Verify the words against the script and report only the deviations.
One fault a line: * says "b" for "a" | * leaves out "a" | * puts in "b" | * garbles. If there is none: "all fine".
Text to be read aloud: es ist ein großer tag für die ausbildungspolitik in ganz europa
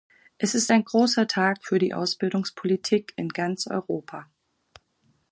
all fine